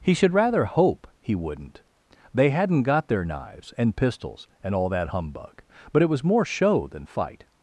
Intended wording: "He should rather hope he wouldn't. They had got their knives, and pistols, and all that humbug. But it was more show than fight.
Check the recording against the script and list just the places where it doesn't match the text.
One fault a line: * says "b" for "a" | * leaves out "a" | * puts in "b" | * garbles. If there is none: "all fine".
* says "hadn't" for "had"